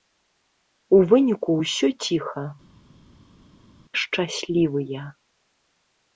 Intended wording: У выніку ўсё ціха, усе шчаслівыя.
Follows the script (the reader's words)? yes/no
no